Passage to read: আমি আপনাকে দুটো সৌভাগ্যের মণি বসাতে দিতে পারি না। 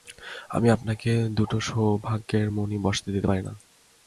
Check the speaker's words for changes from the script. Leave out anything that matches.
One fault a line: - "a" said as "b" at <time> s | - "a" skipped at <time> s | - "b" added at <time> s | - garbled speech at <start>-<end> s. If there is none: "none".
none